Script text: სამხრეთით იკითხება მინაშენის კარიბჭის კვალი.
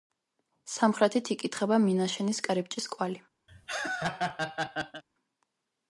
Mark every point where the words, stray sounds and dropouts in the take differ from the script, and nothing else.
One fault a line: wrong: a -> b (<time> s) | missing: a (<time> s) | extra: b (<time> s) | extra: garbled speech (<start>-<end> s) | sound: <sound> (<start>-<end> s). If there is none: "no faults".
sound: laugh (3.5-5.0 s)